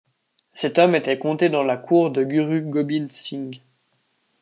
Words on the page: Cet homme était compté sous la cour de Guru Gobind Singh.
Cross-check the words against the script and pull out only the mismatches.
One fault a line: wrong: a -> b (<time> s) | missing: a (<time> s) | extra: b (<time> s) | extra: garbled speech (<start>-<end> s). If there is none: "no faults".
wrong: sous -> dans (1.5 s)